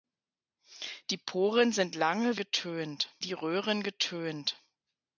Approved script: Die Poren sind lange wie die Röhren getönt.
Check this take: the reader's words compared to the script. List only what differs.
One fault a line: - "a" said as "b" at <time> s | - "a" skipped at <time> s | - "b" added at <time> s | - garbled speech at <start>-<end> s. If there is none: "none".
- "wie" said as "getönt" at 2.4 s